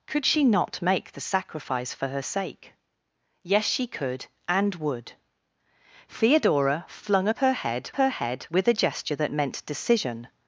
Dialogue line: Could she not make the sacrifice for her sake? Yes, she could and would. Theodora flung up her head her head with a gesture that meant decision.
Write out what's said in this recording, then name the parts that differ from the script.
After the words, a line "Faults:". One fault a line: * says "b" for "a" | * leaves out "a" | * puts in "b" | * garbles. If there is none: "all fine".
Could she not make the sacrifice for her sake? Yes, she could and would. Theodora flung up her head her head with a gesture that meant decision.
Faults:
all fine